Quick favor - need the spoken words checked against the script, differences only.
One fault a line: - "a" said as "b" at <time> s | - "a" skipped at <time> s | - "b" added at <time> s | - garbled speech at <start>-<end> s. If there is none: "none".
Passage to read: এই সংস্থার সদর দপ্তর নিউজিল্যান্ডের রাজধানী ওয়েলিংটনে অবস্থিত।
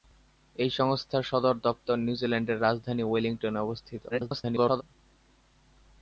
- garbled speech at 4.1-4.8 s